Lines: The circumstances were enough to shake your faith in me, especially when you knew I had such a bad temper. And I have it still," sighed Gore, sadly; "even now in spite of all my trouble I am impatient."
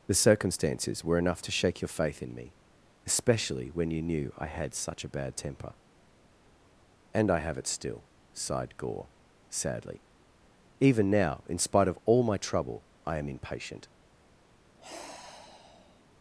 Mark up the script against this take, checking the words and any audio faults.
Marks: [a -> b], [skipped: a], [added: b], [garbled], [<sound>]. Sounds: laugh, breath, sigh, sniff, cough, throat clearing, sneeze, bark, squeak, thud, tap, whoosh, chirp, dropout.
The circumstances were enough to shake your faith in me, especially when you knew I had such a bad temper. And I have it still," sighed Gore, sadly; "even now in spite of all my trouble I am impatient." [sigh]